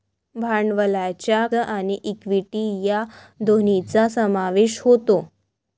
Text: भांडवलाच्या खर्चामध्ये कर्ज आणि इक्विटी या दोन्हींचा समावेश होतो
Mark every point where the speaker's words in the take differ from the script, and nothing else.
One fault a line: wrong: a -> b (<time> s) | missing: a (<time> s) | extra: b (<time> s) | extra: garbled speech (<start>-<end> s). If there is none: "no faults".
missing: खर्चामध्ये कर्ज (1.5 s)